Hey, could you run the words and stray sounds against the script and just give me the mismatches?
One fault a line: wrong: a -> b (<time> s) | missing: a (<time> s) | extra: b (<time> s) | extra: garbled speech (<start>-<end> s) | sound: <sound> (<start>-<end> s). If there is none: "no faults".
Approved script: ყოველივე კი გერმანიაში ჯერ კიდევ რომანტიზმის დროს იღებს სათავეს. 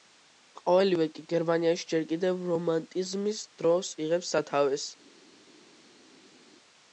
no faults